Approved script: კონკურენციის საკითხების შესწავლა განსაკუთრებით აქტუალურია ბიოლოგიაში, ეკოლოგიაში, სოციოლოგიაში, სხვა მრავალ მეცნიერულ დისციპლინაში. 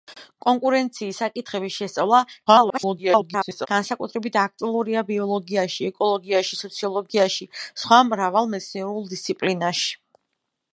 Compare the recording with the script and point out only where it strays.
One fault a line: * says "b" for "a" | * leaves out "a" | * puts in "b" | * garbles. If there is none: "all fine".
* garbles